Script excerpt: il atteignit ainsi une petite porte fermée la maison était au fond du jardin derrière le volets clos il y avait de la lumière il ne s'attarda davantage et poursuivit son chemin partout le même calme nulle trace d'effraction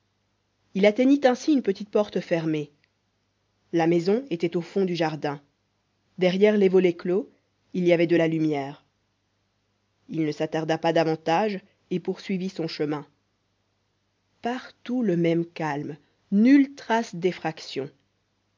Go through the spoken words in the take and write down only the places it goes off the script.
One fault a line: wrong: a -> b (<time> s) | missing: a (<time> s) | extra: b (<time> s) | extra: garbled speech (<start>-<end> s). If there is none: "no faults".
wrong: le -> les (6.6 s)
extra: pas (10.8 s)